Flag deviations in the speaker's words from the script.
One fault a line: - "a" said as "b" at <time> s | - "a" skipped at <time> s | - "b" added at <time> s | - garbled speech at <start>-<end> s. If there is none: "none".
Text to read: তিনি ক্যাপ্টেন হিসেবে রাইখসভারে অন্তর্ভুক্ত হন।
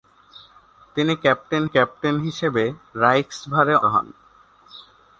- "ক্যাপ্টেন" added at 1.6 s
- "অন্তর্ভুক্ত" skipped at 3.7 s